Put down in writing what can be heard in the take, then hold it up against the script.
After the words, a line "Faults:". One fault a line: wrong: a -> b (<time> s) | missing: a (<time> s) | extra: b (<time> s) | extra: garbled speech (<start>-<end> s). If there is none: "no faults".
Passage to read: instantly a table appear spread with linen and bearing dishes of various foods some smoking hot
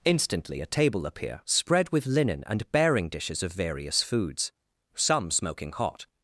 instantly a table appear spread with linen and bearing dishes of various foods some smoking hot
Faults:
no faults